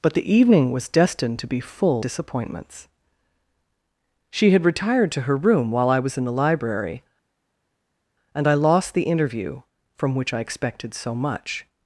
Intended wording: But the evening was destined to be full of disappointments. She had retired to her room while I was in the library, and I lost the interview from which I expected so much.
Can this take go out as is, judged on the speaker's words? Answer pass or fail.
fail